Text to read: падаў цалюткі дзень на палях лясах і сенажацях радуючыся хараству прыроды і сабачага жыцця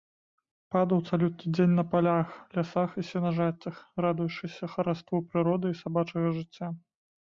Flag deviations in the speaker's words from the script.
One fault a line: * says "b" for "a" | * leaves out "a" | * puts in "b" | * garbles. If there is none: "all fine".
all fine